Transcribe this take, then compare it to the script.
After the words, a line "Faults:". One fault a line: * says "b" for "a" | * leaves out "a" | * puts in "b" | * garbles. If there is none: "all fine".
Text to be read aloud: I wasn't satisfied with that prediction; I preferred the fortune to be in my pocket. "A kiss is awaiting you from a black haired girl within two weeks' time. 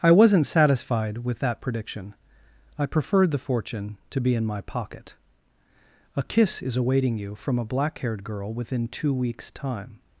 I wasn't satisfied with that prediction; I preferred the fortune to be in my pocket. "A kiss is awaiting you from a black haired girl within two weeks' time.
Faults:
all fine